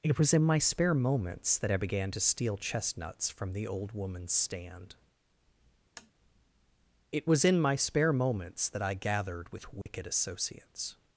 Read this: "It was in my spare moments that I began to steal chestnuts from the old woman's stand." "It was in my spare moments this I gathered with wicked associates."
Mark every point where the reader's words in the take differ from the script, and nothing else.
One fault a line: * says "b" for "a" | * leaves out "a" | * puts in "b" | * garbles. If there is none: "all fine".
* says "that" for "this"